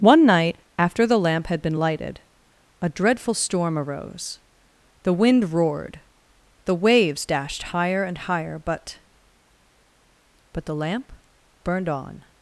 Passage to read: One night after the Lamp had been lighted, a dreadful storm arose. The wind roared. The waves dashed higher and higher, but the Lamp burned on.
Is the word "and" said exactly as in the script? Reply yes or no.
yes